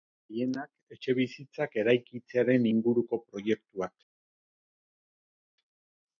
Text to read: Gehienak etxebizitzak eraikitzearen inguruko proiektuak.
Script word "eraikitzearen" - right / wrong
right